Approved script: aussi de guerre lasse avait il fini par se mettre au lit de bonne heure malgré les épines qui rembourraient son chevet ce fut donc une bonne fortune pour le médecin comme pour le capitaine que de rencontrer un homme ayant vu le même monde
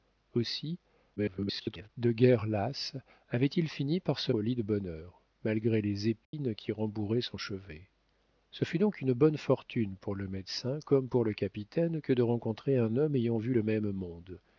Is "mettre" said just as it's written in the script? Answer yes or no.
no